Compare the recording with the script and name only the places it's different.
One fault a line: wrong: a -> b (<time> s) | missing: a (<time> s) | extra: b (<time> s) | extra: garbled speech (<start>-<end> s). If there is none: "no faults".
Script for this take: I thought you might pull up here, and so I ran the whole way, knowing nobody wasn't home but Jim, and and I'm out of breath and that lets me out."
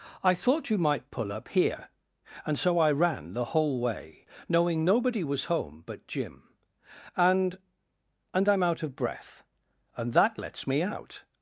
wrong: wasn't -> was (5.2 s)